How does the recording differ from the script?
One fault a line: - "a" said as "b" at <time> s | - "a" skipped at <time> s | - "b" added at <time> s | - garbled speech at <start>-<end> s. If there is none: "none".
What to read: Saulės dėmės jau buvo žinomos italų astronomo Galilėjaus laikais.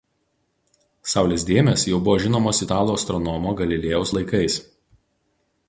none